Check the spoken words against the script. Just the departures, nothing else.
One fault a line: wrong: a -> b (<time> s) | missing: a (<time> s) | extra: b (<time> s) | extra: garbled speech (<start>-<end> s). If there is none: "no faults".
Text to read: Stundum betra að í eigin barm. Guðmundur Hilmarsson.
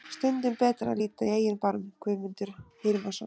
extra: líta (1.0 s)